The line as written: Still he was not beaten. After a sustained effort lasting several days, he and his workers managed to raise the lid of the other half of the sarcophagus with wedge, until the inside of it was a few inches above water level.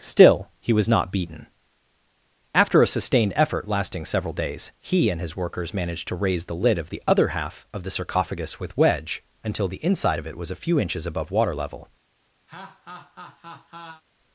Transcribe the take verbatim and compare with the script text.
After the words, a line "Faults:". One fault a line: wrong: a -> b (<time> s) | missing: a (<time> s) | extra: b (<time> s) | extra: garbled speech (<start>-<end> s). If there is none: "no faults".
Still he was not beaten. After a sustained effort lasting several days, he and his workers managed to raise the lid of the other half of the sarcophagus with wedge, until the inside of it was a few inches above water level.
Faults:
no faults